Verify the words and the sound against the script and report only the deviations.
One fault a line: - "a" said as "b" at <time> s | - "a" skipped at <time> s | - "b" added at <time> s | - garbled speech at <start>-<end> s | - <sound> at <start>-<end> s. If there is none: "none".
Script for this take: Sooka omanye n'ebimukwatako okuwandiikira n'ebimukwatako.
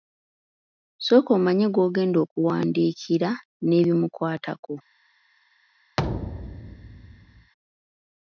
- "n'ebimukwatako" said as "gw'ogenda" at 1.7 s
- thud at 6.0-7.5 s